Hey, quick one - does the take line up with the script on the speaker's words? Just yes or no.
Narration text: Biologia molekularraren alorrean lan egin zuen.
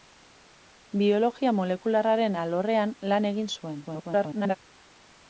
no